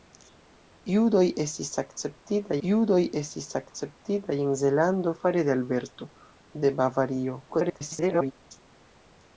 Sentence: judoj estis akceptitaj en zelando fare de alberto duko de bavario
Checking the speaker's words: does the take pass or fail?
fail